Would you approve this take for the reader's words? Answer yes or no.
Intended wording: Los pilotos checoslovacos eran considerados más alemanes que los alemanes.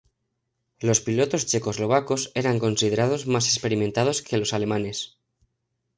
no